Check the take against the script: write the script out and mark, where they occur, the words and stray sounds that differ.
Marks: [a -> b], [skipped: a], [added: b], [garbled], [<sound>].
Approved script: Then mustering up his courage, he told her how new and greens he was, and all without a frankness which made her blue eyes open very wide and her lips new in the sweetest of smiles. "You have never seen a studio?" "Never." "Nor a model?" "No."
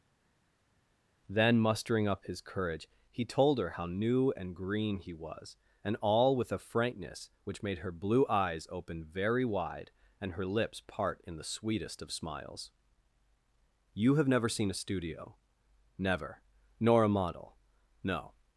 Then mustering up his courage, he told her how new and [greens -> green] he was, and all [without -> with] a frankness which made her blue eyes open very wide and her lips [new -> part] in the sweetest of smiles. "You have never seen a studio?" "Never." "Nor a model?" "No."